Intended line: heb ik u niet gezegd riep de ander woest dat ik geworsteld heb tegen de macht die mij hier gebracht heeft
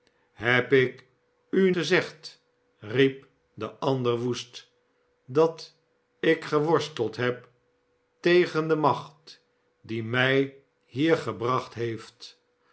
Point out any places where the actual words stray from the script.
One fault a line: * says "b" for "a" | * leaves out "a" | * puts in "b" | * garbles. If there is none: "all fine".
* leaves out "niet"